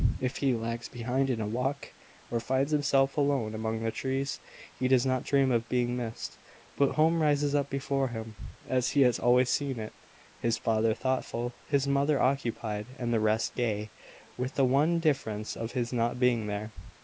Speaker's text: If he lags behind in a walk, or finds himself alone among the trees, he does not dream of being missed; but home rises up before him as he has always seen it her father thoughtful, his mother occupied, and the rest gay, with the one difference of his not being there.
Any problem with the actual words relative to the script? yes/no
yes